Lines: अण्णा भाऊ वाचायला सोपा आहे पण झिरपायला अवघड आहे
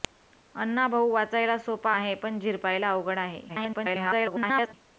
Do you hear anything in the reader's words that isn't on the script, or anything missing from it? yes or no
yes